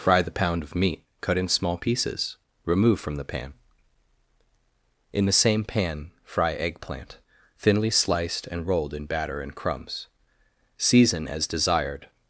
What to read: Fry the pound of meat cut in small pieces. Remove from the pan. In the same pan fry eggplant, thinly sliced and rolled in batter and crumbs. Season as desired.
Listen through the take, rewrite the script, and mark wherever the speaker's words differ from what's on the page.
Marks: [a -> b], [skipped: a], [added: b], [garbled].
Fry the pound of meat cut in small pieces. Remove from the pan. In the same pan fry eggplant, thinly sliced and rolled in batter and crumbs. Season as desired.